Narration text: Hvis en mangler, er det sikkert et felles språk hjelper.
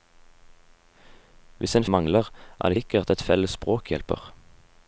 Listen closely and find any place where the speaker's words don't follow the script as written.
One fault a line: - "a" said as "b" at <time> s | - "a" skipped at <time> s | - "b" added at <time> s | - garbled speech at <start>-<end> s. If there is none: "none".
none